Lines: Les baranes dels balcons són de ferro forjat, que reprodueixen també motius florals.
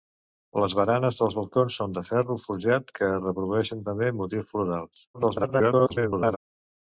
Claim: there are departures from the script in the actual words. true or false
true